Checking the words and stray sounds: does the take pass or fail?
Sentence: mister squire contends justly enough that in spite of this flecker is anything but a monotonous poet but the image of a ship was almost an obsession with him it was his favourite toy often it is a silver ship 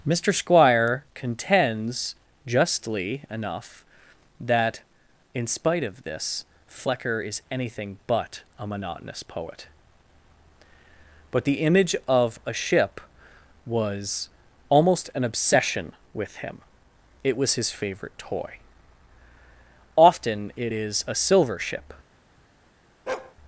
fail